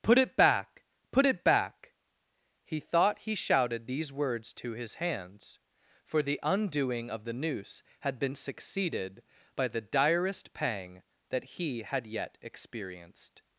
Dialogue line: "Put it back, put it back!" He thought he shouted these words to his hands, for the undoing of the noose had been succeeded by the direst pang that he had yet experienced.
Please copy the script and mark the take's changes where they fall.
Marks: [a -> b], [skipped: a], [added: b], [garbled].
"Put it back, put it back!" He thought he shouted these words to his hands, for the undoing of the noose had been succeeded by the direst pang that he had yet experienced.